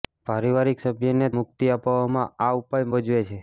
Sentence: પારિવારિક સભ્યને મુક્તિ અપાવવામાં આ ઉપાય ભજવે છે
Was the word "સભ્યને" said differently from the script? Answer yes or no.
no